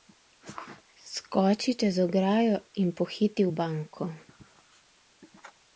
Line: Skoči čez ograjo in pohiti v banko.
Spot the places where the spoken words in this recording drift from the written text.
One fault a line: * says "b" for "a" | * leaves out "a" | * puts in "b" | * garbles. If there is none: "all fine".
all fine